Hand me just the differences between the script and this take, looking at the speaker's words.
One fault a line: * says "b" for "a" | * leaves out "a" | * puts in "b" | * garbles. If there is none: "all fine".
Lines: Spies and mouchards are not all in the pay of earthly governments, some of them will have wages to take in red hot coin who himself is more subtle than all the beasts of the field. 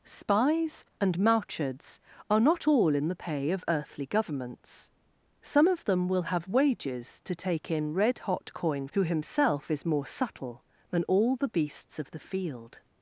all fine